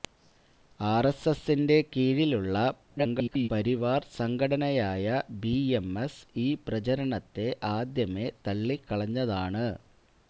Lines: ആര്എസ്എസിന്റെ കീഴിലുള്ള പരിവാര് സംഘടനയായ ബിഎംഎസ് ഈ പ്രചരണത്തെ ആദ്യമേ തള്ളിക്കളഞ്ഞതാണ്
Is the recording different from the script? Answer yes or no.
yes